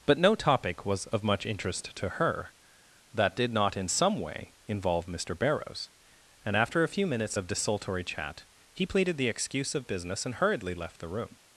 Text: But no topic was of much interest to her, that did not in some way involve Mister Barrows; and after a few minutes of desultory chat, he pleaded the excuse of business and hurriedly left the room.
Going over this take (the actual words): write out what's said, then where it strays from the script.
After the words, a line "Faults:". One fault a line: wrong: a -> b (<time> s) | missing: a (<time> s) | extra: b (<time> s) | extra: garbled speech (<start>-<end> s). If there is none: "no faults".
But no topic was of much interest to her, that did not in some way involve Mister Barrows; and after a few minutes of desultory chat, he pleaded the excuse of business and hurriedly left the room.
Faults:
no faults